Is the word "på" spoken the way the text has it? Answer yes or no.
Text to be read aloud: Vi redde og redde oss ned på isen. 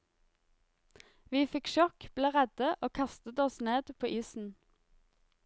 yes